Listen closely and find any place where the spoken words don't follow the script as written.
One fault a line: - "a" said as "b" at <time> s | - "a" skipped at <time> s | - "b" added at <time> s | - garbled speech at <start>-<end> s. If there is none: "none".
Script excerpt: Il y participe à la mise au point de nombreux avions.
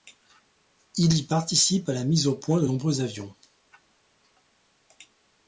none